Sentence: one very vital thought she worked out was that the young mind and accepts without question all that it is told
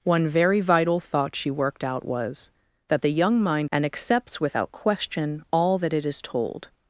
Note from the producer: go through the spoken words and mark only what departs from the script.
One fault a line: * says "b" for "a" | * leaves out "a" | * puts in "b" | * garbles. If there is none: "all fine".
all fine